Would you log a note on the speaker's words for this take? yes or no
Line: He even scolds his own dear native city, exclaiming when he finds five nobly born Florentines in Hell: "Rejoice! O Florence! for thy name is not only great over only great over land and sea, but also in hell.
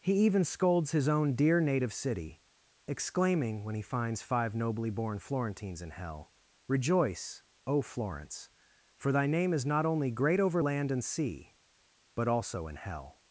yes